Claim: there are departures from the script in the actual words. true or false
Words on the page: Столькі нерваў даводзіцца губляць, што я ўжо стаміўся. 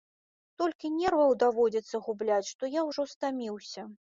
false